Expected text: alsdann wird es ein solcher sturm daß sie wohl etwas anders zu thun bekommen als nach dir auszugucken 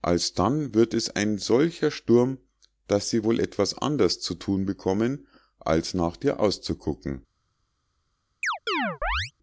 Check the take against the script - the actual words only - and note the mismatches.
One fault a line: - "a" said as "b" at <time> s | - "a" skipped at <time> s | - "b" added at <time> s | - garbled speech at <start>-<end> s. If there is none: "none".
none